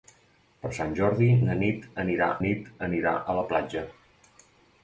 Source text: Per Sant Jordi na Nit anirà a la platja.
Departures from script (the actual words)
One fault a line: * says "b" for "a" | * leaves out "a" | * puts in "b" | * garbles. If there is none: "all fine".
* puts in "Nit anirà"